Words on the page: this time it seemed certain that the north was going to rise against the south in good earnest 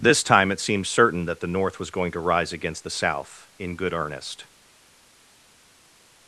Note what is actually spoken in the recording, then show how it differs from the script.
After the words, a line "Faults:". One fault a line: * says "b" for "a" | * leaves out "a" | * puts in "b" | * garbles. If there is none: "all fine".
this time it seemed certain that the north was going to rise against the south in good earnest
Faults:
all fine